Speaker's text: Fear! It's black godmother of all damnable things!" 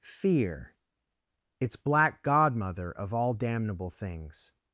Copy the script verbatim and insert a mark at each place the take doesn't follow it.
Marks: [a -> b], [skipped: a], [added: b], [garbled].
Fear! It's black godmother of all damnable things!"